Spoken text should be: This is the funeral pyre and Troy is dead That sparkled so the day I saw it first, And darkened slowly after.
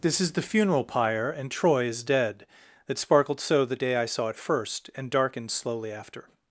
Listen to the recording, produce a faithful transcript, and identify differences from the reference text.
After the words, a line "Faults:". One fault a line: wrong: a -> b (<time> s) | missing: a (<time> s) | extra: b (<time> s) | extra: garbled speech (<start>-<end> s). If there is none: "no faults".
This is the funeral pyre and Troy is dead That sparkled so the day I saw it first, And darkened slowly after.
Faults:
no faults